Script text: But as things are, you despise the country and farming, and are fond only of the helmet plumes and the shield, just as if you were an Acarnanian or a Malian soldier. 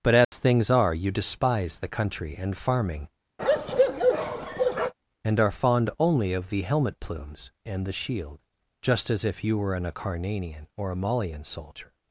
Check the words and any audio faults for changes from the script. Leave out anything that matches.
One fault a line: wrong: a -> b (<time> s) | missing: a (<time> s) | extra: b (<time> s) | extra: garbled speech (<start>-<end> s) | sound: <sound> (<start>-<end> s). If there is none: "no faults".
sound: dropout (0.2-0.3 s)
sound: bark (3.4-4.9 s)